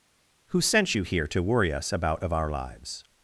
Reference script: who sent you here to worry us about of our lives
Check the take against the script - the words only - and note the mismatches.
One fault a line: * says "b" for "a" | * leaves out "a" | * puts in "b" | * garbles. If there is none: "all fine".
all fine